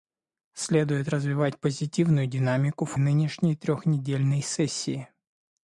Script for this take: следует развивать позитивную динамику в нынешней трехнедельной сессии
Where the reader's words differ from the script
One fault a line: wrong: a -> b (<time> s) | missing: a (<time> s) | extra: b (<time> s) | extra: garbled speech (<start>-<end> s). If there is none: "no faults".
no faults